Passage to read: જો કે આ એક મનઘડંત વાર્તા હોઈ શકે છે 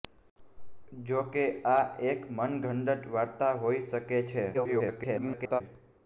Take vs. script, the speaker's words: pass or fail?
fail